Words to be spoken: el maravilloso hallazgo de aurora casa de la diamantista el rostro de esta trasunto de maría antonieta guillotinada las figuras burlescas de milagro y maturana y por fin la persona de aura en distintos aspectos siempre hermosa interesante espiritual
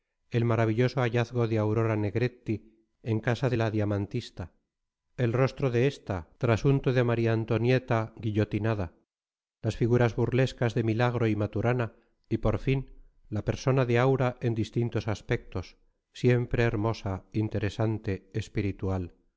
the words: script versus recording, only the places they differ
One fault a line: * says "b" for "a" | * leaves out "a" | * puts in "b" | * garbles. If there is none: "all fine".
* puts in "negretti en"